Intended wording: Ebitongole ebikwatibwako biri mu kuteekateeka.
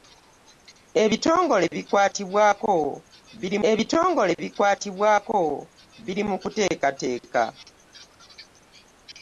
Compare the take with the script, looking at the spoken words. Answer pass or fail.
fail